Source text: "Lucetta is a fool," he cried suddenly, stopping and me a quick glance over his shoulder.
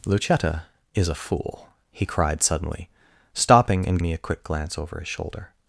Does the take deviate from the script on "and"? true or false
false